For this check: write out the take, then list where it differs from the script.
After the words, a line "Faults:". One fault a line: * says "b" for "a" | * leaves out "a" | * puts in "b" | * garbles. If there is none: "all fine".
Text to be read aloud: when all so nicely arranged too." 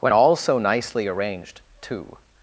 when all so nicely arranged too."
Faults:
all fine